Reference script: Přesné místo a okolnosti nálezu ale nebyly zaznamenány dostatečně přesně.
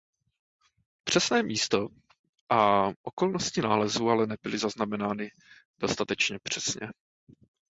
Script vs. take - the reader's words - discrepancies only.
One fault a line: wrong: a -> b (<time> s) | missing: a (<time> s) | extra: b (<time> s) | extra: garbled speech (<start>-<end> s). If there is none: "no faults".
no faults